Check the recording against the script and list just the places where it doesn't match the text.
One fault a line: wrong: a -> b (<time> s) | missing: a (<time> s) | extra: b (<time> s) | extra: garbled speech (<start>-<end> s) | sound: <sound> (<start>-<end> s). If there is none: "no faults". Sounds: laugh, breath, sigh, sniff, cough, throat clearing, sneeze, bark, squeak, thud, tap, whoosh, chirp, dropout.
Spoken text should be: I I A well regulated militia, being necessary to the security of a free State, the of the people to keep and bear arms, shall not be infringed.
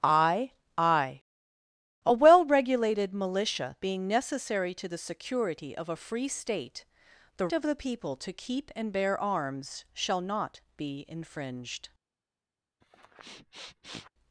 sound: sniff (12.8-14.1 s)